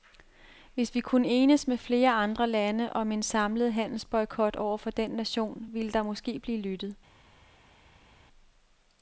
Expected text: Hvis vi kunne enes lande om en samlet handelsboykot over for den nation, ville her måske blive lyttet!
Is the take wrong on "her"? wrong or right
wrong